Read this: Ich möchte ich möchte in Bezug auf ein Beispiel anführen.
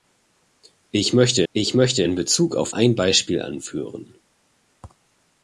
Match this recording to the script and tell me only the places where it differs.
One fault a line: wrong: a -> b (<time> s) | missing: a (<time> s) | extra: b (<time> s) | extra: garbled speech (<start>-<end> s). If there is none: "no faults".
no faults